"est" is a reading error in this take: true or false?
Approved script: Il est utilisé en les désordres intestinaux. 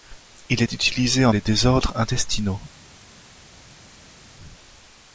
false